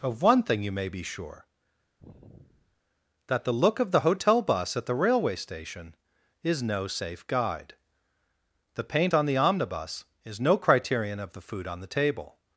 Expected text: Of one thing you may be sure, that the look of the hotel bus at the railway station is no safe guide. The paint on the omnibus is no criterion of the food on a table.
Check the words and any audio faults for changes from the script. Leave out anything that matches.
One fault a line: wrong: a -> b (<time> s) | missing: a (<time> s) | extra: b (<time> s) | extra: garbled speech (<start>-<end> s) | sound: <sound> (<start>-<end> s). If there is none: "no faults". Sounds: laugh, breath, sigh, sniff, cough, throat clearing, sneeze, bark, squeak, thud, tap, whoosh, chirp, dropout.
sound: sigh (2.0-2.8 s)
wrong: a -> the (11.8 s)